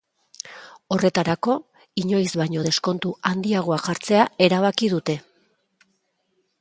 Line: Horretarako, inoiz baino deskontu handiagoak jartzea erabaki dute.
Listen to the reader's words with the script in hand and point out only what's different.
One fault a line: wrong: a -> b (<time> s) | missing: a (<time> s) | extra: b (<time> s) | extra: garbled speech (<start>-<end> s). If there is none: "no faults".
no faults